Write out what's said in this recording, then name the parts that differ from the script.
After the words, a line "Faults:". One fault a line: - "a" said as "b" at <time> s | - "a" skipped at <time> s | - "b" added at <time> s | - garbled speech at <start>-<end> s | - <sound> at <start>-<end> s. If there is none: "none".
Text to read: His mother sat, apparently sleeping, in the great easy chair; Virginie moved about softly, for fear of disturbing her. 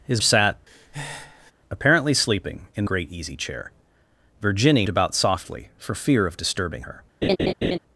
His sat, apparently sleeping, in great easy chair; Virginie about softly, for fear of disturbing her.
Faults:
- "mother" skipped at 0.2 s
- breath at 0.7-1.5 s
- "the" skipped at 2.8 s
- "moved" skipped at 4.9 s
- laugh at 7.2-7.8 s